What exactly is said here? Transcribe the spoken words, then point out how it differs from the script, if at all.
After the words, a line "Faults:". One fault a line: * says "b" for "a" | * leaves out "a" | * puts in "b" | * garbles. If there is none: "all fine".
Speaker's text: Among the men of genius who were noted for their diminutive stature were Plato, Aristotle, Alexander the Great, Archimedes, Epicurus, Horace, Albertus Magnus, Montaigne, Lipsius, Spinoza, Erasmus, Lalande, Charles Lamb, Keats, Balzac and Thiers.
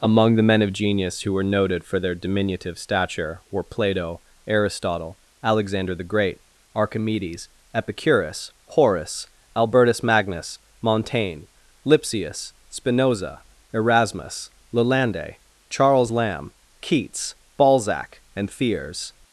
Among the men of genius who were noted for their diminutive stature were Plato, Aristotle, Alexander the Great, Archimedes, Epicurus, Horace, Albertus Magnus, Montaigne, Lipsius, Spinoza, Erasmus, Lalande, Charles Lamb, Keats, Balzac and Thiers.
Faults:
all fine